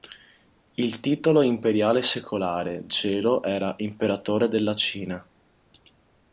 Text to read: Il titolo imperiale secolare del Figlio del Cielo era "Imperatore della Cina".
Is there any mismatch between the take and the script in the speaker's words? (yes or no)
yes